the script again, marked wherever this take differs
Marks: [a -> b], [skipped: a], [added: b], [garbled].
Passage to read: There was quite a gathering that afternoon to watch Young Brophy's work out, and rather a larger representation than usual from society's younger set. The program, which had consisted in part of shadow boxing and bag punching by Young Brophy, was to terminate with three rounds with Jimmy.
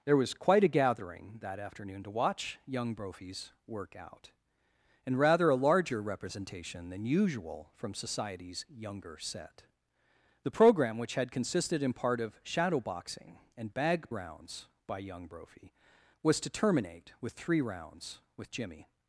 There was quite a gathering that afternoon to watch Young Brophy's work out, and rather a larger representation than usual from society's younger set. The program, which had consisted in part of shadow boxing and bag [punching -> rounds] by Young Brophy, was to terminate with three rounds with Jimmy.